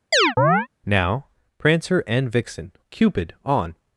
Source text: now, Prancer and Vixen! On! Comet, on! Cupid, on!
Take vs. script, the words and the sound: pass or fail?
fail